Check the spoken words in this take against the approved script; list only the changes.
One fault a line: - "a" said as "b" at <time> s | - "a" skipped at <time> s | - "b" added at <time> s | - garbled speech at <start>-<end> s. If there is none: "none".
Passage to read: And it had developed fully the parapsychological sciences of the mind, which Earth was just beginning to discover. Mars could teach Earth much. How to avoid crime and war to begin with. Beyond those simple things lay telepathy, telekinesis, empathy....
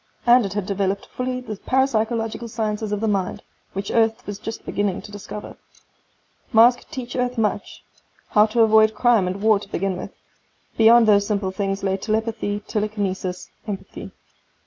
none